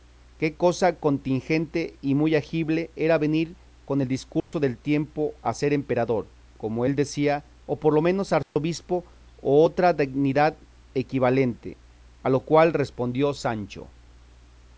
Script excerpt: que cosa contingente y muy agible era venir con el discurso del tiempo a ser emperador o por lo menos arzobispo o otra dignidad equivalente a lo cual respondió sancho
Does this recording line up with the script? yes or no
no